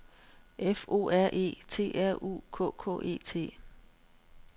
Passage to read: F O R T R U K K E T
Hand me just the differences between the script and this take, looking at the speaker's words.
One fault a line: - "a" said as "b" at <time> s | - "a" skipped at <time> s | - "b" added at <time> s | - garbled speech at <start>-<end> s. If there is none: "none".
- "E" added at 1.3 s